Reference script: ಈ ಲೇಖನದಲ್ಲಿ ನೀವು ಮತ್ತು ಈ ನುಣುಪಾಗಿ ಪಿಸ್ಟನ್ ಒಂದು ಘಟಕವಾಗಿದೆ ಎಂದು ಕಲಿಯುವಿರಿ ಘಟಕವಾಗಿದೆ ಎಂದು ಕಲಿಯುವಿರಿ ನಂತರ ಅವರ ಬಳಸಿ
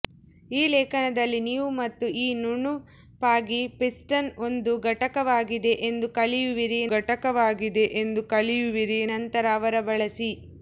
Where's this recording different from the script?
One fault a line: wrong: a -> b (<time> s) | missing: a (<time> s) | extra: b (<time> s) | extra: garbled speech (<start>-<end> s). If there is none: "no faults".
no faults